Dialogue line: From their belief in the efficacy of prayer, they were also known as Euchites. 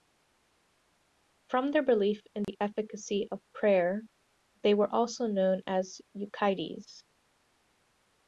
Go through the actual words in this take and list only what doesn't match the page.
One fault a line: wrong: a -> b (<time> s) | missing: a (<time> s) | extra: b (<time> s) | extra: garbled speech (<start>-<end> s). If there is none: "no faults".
no faults